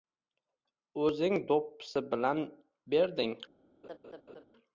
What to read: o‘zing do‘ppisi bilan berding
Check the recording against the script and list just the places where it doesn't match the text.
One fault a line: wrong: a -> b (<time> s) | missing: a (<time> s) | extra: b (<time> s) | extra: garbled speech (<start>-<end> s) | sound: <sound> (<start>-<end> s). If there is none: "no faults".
sound: laugh (3.8-4.4 s)